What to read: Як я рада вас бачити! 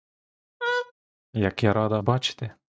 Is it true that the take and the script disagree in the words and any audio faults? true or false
true